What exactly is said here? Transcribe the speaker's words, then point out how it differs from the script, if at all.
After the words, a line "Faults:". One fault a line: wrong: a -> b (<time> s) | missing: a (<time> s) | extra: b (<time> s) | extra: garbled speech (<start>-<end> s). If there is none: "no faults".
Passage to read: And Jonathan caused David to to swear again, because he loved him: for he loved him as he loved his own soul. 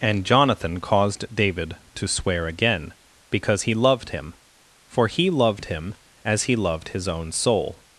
And Jonathan caused David to swear again, because he loved him: for he loved him as he loved his own soul.
Faults:
missing: to (2.1 s)